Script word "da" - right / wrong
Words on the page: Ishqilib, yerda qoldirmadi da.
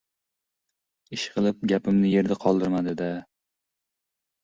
right